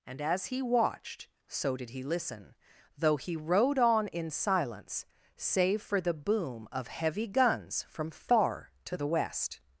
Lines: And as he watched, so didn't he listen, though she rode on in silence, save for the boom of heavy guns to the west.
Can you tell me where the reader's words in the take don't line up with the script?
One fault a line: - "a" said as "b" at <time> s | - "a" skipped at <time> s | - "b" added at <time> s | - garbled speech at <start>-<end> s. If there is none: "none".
- "didn't" said as "did" at 1.8 s
- "she" said as "he" at 3.1 s
- "from far" added at 7.8 s